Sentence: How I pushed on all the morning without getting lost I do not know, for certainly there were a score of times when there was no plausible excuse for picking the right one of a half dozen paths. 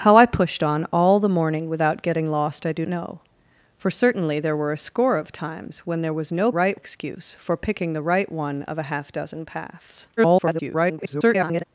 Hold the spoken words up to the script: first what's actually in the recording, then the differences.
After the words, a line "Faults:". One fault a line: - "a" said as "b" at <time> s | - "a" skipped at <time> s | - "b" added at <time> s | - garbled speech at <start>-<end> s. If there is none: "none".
How I pushed on all the morning without getting lost I do know, for certainly there were a score of times when there was no right excuse for picking the right one of a half dozen paths. [garbled]
Faults:
- "not" skipped at 2.9 s
- "plausible" said as "right" at 6.5 s
- garbled speech at 10.2-11.6 s